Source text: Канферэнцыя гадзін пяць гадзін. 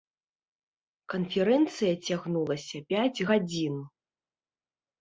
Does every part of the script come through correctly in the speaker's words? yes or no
no